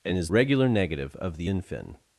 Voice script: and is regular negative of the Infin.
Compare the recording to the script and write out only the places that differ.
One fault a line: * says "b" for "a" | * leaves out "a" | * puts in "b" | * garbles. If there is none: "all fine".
all fine